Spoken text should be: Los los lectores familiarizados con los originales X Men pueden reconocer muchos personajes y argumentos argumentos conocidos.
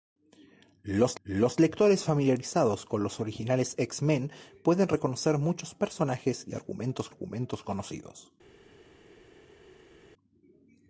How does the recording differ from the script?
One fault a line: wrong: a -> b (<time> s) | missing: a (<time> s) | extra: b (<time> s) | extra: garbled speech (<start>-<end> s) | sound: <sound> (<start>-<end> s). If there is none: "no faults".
no faults